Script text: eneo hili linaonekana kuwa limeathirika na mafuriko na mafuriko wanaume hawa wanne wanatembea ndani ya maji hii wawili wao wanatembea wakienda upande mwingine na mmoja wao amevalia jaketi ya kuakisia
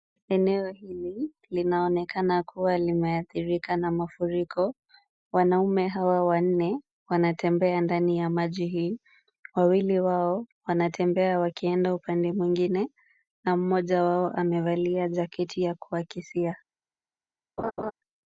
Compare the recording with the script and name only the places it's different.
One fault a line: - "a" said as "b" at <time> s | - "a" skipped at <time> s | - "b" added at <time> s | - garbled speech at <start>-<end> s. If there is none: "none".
- "na mafuriko" skipped at 4.7 s